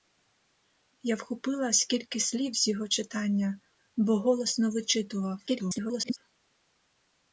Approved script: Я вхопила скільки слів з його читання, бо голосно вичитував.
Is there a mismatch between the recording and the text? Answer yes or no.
yes